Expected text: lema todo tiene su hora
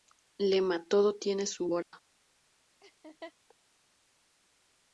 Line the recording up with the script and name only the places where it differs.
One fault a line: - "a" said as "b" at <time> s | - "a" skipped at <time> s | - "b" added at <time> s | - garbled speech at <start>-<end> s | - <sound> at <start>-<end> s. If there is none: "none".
- dropout at 1.8-1.9 s
- laugh at 2.8-3.3 s